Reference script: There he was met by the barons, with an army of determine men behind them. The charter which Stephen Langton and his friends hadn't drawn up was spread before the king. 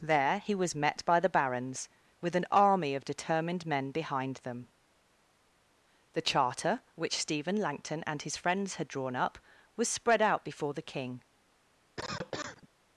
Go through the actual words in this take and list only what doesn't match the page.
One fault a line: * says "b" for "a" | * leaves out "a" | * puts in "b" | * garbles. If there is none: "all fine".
* says "determined" for "determine"
* says "had" for "hadn't"
* puts in "out"